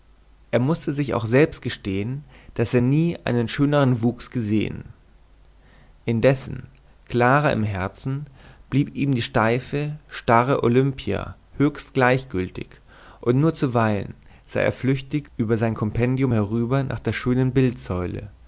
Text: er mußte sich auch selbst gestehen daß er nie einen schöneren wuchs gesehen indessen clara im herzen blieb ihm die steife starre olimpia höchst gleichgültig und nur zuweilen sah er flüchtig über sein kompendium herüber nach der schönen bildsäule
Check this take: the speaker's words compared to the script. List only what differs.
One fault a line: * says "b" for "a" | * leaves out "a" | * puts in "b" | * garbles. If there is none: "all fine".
all fine